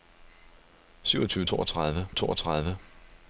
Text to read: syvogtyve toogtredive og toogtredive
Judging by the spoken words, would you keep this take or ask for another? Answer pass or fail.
pass